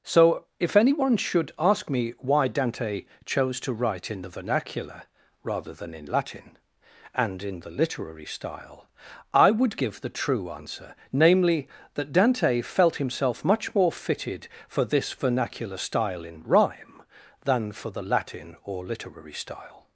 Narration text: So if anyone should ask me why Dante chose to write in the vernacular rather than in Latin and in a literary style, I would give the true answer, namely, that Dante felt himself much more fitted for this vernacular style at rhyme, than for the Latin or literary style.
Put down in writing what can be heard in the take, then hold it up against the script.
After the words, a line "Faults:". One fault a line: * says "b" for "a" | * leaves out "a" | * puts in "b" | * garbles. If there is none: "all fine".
So if anyone should ask me why Dante chose to write in the vernacular rather than in Latin and in the literary style, I would give the true answer, namely, that Dante felt himself much more fitted for this vernacular style in rhyme, than for the Latin or literary style.
Faults:
* says "the" for "a"
* says "in" for "at"